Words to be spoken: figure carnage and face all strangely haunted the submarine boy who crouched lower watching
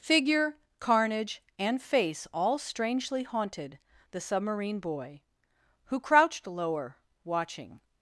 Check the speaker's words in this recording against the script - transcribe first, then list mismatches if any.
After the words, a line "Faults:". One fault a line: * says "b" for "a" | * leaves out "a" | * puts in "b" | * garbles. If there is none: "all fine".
figure carnage and face all strangely haunted the submarine boy who crouched lower watching
Faults:
all fine